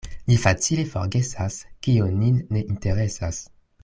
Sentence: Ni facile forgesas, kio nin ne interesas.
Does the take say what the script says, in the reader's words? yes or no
yes